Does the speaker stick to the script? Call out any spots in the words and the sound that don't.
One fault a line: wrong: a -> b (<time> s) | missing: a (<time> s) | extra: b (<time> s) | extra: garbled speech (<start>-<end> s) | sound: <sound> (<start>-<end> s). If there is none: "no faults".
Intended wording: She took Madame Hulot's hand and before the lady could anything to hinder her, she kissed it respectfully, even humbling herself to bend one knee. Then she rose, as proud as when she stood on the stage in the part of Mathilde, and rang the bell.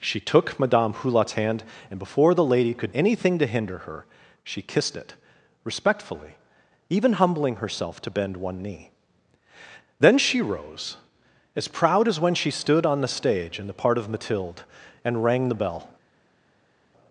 no faults